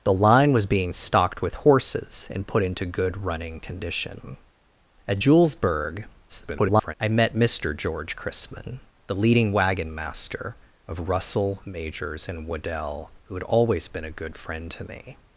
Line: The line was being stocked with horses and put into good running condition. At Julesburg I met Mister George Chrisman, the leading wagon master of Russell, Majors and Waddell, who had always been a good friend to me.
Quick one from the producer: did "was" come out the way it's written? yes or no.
yes